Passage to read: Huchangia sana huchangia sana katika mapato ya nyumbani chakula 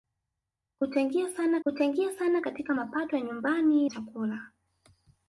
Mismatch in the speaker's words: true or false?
false